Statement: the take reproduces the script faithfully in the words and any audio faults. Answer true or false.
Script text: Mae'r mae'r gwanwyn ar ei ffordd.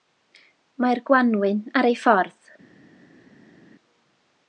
false